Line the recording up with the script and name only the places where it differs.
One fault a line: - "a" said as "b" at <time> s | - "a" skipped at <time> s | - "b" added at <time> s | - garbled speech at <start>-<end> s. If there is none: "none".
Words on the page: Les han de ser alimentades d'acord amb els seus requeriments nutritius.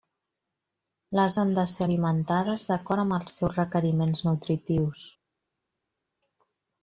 none